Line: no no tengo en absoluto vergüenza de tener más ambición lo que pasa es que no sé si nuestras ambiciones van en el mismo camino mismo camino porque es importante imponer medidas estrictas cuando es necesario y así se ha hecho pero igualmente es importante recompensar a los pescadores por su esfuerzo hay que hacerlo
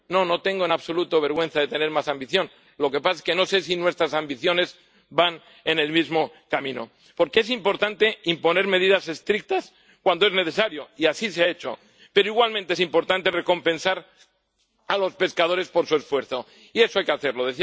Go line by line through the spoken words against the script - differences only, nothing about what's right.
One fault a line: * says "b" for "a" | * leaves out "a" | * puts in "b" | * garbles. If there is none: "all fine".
* leaves out "mismo camino"
* puts in "y eso"